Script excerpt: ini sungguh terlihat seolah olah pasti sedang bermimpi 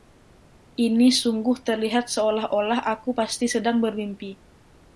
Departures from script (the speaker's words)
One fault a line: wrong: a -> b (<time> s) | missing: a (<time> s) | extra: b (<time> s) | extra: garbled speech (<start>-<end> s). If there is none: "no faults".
extra: aku (2.9 s)